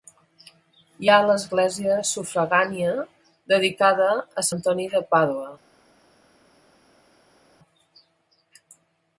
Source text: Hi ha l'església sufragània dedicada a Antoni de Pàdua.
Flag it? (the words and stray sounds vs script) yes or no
no